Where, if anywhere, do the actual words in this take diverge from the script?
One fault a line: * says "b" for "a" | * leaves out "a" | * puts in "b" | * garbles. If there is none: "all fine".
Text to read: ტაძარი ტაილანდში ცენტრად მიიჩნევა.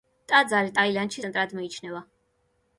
all fine